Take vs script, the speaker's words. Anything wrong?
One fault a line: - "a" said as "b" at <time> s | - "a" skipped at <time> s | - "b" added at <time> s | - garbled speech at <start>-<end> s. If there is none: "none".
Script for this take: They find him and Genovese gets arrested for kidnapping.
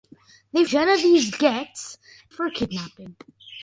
- "find him and" skipped at 0.7 s
- "arrested" skipped at 2.0 s